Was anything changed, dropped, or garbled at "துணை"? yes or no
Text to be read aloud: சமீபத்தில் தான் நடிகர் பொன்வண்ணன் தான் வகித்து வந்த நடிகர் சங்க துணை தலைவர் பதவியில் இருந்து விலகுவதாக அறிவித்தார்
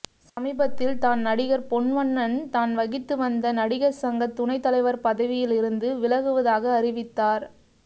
no